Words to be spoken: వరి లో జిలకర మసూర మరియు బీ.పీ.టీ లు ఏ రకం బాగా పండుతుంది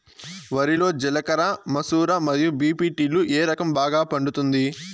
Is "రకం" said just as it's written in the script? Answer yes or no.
yes